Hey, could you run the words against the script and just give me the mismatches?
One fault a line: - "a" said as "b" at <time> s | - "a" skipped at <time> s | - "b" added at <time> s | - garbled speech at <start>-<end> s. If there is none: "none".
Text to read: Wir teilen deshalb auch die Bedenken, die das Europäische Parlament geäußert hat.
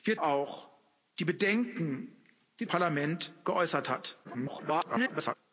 - "teilen deshalb" skipped at 0.2 s
- "das Europäische" skipped at 2.7 s
- garbled speech at 4.2-5.4 s